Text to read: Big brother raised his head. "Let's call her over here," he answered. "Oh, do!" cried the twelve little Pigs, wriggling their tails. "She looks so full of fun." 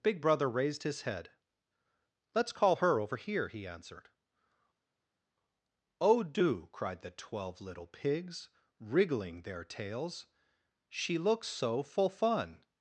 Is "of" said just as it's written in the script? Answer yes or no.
no